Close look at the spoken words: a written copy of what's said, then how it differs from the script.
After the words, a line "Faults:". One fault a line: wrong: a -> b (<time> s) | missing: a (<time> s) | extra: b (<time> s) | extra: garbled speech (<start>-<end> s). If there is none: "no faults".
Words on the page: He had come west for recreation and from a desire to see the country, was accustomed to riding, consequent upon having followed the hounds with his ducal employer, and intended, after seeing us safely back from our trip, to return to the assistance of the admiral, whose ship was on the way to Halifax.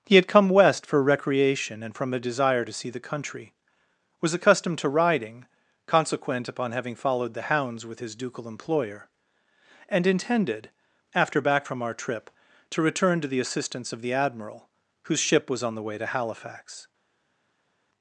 He had come west for recreation and from a desire to see the country, was accustomed to riding, consequent upon having followed the hounds with his ducal employer, and intended, after back from our trip, to return to the assistance of the admiral, whose ship was on the way to Halifax.
Faults:
missing: seeing us safely (11.4 s)